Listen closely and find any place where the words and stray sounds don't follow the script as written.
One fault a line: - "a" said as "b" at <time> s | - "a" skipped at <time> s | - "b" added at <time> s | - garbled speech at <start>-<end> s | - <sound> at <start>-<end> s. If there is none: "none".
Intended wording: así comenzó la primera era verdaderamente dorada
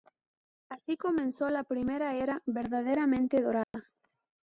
- dropout at 3.6-3.7 s